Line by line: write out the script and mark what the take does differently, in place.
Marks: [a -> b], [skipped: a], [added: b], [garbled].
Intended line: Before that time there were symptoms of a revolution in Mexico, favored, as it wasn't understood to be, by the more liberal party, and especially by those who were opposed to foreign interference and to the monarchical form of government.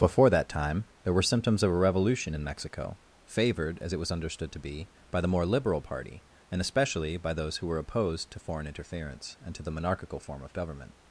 Before that time there were symptoms of a revolution in Mexico, favored, as it [wasn't -> was] understood to be, by the more liberal party, and especially by those who were opposed to foreign interference and to the monarchical form of government.